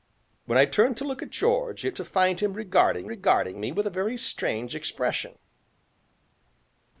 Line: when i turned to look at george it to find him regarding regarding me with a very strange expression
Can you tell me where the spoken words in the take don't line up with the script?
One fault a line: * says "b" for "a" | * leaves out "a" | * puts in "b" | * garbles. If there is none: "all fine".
all fine